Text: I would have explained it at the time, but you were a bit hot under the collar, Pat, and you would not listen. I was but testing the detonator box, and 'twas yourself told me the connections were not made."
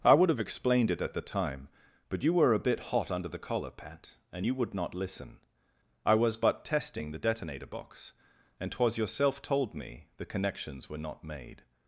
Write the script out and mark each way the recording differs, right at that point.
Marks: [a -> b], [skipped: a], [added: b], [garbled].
I would have explained it at the time, but you were a bit hot under the collar, Pat, and you would not listen. I was but testing the detonator box, and 'twas yourself told me the connections were not made."